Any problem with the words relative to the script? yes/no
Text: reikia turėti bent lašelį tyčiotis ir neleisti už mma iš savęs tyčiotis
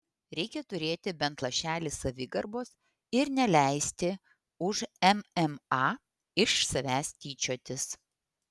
yes